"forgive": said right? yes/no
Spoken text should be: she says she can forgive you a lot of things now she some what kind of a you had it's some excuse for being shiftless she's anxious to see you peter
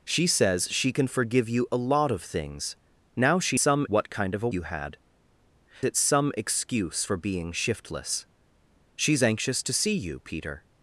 yes